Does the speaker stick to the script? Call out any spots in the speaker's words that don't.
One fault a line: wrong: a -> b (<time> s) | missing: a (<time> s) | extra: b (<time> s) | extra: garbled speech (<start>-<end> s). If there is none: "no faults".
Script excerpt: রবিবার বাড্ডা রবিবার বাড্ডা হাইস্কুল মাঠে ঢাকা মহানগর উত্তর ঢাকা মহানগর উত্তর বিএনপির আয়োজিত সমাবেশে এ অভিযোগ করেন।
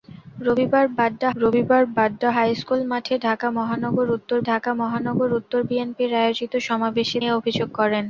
no faults